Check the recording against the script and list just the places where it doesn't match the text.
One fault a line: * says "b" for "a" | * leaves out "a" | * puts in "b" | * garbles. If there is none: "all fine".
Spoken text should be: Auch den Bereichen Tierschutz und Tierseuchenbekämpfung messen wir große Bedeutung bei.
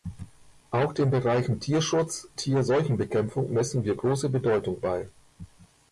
* leaves out "und"